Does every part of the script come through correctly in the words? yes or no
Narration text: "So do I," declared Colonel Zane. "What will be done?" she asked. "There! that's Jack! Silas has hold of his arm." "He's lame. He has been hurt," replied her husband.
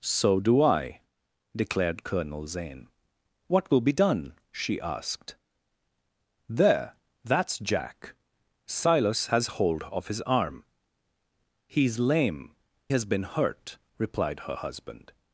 no